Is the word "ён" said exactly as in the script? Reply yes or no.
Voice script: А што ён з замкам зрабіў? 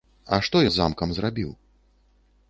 no